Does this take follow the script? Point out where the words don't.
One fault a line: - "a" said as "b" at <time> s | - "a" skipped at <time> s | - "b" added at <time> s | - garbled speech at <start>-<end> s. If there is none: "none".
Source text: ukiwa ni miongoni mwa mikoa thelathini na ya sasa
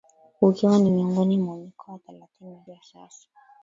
none